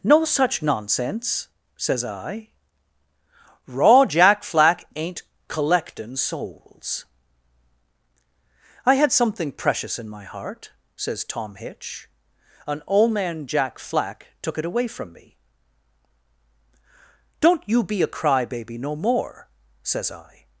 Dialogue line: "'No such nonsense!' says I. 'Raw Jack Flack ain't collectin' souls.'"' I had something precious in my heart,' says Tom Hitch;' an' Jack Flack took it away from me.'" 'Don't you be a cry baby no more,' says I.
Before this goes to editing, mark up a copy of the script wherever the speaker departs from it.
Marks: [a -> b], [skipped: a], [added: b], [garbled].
"'No such nonsense!' says I. 'Raw Jack Flack ain't collectin' souls.'"' I had something precious in my heart,' says Tom Hitch;' an' [added: old man] Jack Flack took it away from me.'" 'Don't you be a cry baby no more,' says I.